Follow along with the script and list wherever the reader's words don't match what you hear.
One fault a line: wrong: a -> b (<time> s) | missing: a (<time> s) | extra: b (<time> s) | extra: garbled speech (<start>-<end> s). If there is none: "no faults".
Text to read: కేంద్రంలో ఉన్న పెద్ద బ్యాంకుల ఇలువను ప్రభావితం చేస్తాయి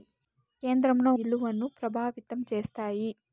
missing: ఉన్న పెద్ద బ్యాంకుల (1.1 s)